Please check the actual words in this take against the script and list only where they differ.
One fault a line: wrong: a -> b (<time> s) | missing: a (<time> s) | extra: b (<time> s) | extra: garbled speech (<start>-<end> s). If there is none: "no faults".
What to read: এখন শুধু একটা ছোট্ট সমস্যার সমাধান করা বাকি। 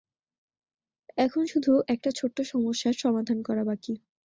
no faults